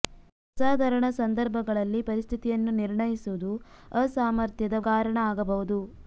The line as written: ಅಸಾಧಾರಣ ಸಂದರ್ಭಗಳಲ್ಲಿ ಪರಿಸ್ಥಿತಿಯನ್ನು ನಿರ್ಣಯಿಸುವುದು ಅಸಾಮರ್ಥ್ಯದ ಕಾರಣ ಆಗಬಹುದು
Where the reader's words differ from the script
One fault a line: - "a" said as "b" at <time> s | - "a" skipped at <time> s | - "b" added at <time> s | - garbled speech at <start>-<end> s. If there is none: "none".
none